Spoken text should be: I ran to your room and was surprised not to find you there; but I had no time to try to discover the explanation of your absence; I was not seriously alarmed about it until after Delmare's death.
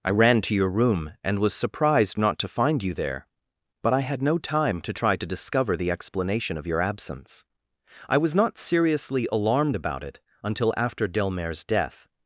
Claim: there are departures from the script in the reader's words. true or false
false